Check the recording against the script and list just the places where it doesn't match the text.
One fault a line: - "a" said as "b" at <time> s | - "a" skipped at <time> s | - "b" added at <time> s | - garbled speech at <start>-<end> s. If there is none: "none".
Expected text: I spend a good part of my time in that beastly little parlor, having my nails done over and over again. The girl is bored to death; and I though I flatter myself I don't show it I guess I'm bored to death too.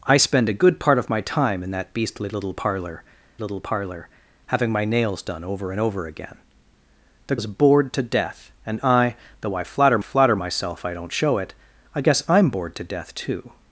- "little parlor" added at 3.4 s
- "girl" skipped at 7.4 s
- "flatter" added at 10.0 s